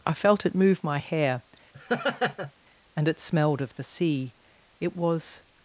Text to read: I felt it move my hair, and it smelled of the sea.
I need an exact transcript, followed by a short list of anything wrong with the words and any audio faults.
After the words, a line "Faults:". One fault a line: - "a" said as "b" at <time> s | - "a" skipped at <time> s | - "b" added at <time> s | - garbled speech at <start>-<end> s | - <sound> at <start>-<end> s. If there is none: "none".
I felt it move my hair, and it smelled of the sea. It was
Faults:
- laugh at 1.7-2.5 s
- "It was" added at 4.8 s